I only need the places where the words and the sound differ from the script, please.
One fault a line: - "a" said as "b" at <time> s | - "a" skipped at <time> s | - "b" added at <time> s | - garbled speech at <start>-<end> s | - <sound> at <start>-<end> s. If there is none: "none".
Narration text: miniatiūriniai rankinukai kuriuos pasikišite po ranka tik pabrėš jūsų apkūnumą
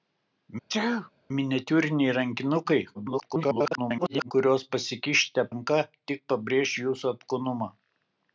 - sneeze at 0.7-1.1 s
- garbled speech at 2.9-4.3 s
- "po" skipped at 5.5 s